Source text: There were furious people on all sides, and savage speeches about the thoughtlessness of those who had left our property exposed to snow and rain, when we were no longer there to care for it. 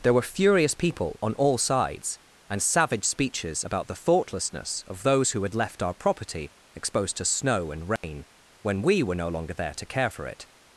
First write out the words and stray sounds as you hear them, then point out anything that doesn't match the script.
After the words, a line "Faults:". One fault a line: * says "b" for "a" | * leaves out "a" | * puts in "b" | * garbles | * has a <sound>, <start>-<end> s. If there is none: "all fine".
There were furious people on all sides, and savage speeches about the thoughtlessness of those who had left our property exposed to snow and rain, when we were no longer there to care for it.
Faults:
* has a dropout, 8.0-8.0 s